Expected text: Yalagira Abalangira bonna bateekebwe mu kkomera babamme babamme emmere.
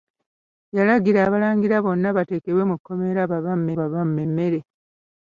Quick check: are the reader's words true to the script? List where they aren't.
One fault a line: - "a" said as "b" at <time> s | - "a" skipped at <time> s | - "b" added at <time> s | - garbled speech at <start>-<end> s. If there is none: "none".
none